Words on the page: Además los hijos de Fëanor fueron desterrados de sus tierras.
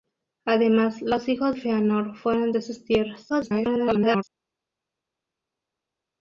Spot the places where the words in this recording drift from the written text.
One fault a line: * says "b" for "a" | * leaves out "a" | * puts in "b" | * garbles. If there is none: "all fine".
* leaves out "de"
* leaves out "desterrados"
* garbles